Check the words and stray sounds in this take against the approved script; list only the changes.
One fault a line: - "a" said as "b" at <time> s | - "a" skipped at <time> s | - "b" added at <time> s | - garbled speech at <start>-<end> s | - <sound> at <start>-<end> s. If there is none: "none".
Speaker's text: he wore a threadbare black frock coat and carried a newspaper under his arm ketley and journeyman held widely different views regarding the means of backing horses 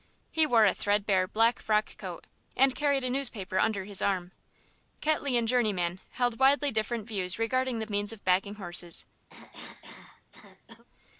- cough at 9.3-10.8 s